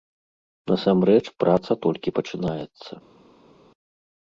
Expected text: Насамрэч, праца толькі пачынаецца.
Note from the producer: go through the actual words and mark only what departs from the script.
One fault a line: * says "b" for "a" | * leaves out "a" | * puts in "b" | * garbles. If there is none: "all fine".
all fine